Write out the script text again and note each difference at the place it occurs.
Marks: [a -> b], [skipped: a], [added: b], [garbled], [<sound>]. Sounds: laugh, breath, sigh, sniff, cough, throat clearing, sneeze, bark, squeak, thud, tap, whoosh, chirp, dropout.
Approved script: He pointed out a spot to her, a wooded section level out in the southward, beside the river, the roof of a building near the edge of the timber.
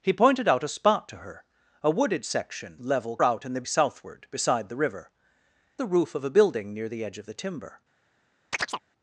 He pointed out a spot to her, a wooded section level out in the southward, beside the river, the roof of a building near the edge of the timber. [chirp]